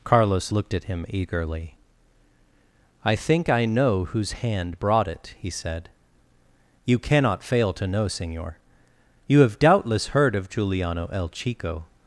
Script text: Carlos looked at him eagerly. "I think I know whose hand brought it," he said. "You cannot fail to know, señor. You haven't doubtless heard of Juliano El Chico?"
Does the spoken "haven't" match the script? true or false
false